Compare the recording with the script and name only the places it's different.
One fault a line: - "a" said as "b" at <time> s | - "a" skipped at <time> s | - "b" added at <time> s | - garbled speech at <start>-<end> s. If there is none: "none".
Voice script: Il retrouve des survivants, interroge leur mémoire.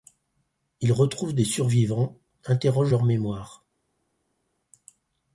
none